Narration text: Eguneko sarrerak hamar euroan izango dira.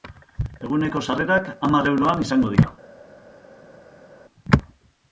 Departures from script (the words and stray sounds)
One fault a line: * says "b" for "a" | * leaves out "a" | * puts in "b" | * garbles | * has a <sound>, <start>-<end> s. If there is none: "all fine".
all fine